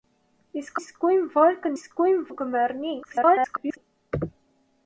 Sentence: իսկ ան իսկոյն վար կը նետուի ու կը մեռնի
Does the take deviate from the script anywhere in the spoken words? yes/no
yes